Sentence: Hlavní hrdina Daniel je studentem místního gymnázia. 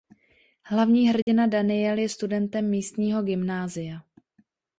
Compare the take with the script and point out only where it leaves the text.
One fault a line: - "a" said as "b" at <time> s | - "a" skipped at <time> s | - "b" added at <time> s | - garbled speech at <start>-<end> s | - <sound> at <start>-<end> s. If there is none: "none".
- dropout at 1.2-1.3 s